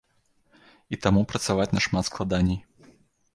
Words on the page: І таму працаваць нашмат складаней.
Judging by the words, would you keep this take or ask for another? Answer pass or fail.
pass